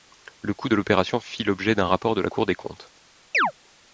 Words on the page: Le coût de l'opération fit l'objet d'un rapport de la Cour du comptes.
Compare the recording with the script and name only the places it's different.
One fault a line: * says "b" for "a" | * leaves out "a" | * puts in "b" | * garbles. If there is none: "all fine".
* says "des" for "du"